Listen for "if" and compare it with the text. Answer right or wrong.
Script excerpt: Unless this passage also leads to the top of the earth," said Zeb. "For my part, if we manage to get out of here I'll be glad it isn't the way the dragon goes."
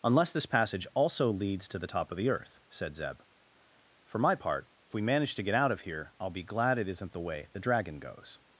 wrong